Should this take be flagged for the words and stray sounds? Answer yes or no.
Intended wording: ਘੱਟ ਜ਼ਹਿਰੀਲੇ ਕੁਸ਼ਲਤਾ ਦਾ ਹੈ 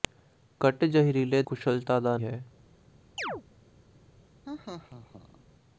yes